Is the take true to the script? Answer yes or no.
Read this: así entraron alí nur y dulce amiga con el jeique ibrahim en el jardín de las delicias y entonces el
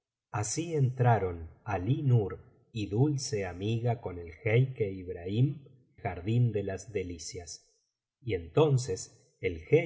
no